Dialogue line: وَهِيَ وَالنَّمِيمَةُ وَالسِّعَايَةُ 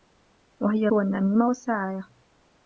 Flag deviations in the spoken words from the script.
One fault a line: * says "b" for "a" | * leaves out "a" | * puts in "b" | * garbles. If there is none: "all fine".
all fine